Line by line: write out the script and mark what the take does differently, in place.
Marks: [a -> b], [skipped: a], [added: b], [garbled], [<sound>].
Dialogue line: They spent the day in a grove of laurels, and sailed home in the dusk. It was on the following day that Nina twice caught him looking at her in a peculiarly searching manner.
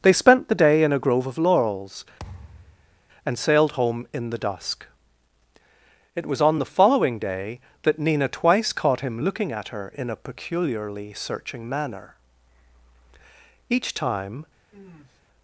They spent the day in a grove of laurels, [thud] and sailed home in the dusk. It was on the following day that Nina twice caught him looking at her in a peculiarly searching manner. [added: Each time] [sniff]